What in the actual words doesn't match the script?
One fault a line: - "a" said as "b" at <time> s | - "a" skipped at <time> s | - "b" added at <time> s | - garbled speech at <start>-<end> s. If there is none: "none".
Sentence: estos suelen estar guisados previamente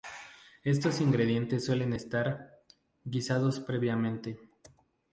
- "ingredientes" added at 1.0 s